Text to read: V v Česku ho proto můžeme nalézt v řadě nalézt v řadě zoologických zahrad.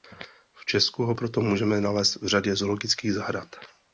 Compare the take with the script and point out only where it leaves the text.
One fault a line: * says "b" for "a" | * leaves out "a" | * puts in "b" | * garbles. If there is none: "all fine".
* leaves out "v"
* leaves out "nalézt v řadě"